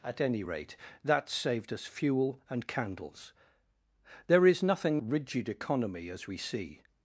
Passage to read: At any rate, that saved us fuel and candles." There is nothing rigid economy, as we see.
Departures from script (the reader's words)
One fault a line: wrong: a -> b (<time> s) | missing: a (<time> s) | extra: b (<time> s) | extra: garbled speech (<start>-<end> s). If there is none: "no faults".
no faults